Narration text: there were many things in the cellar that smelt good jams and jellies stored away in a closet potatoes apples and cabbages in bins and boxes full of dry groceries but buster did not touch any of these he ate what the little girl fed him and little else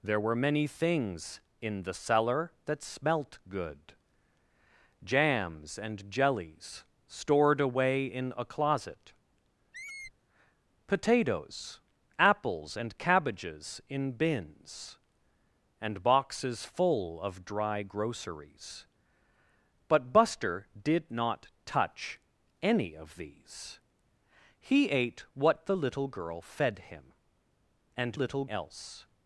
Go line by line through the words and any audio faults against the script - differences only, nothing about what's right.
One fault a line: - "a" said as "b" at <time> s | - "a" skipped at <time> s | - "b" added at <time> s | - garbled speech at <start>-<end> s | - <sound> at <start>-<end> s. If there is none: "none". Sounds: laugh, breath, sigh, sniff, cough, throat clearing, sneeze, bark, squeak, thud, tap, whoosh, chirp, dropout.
- squeak at 9.7-10.1 s